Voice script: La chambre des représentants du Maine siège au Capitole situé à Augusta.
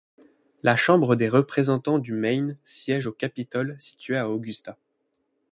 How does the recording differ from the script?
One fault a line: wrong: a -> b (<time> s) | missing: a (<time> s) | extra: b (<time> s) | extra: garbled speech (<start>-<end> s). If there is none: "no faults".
no faults